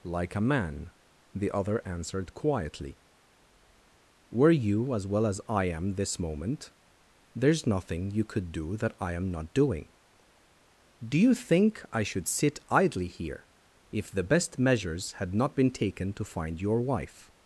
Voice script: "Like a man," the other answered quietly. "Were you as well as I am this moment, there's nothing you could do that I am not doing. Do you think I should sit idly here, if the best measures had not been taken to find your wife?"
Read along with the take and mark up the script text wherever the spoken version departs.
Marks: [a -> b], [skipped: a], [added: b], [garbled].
"Like a man," the other answered quietly. "Were you as well as I am this moment, there's nothing you could do that I am not doing. Do you think I should sit idly here, if the best measures had not been taken to find your wife?"